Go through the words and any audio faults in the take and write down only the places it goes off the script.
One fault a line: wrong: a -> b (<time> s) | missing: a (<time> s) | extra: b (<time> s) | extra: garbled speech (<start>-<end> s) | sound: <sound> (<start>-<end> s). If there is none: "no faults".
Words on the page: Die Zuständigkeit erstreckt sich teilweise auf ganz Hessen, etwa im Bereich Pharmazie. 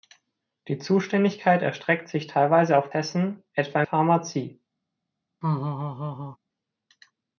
missing: ganz (2.9 s)
missing: im Bereich (3.8 s)
sound: laugh (5.4-6.4 s)